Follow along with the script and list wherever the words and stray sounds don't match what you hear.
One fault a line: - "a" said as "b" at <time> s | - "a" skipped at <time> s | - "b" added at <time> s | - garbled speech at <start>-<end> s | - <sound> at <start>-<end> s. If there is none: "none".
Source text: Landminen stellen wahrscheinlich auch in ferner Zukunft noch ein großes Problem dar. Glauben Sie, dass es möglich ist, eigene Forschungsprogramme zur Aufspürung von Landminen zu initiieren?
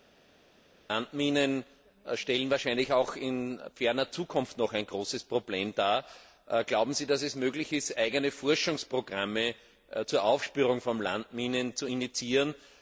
none